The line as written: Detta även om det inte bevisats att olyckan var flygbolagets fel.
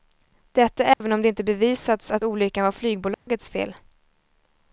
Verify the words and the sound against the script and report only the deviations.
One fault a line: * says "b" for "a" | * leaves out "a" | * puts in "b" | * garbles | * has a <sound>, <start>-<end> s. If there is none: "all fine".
* has a dropout, 0.9-1.0 s
* has a dropout, 3.1-3.3 s